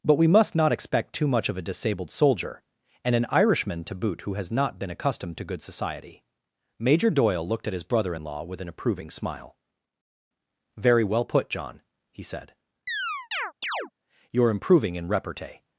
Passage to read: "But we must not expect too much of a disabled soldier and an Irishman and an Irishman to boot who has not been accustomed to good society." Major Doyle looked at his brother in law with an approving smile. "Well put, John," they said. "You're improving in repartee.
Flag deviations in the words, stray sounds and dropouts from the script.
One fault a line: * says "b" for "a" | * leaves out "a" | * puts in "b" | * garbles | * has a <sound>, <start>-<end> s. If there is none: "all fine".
* leaves out "and an Irishman"
* puts in "Very"
* says "he" for "they"
* has a chirp, 12.9-13.9 s